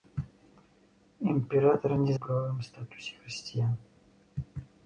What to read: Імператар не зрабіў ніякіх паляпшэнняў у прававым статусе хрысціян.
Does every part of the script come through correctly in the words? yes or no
no